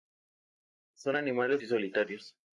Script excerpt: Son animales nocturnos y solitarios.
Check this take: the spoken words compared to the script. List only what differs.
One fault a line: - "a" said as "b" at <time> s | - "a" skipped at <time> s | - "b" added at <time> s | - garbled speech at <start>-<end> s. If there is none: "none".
- "nocturnos" skipped at 1.6 s